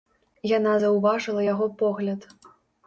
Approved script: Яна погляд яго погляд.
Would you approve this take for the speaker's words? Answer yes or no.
no